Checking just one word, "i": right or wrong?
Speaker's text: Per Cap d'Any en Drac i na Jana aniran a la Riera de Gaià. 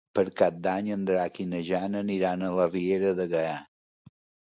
right